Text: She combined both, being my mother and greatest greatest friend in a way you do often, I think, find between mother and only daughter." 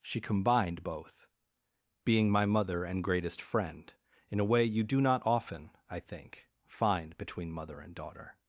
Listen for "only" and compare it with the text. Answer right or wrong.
wrong